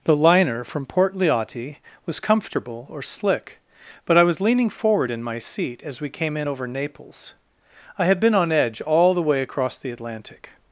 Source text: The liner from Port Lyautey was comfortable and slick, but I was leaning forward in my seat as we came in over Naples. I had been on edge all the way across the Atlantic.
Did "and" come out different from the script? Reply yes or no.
yes